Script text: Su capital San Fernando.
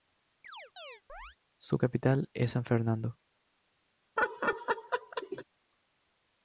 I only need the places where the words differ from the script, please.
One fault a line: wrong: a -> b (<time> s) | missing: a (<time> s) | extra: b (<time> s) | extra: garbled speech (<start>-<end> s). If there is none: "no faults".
extra: es (2.3 s)